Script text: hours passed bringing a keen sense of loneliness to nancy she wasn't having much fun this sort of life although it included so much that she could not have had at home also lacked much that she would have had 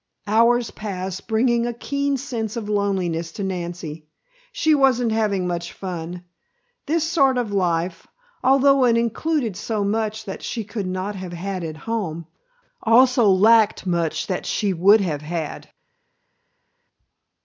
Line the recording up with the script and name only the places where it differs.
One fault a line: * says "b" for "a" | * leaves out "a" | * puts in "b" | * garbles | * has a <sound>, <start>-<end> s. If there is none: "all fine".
all fine